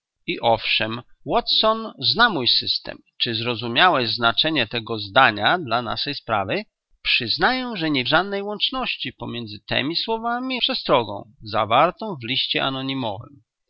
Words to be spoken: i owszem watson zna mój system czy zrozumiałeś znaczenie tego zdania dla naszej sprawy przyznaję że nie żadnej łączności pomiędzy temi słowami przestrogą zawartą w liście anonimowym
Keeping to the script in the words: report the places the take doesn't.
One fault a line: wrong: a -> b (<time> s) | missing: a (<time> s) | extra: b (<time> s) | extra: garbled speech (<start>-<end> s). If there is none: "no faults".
no faults